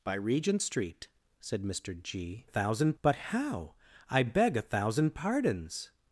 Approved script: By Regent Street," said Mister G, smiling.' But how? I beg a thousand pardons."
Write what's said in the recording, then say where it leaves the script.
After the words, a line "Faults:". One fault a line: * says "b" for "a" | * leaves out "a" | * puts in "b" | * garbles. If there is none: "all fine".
By Regent Street," said Mister G, thousand.' But how? I beg a thousand pardons."
Faults:
* says "thousand" for "smiling"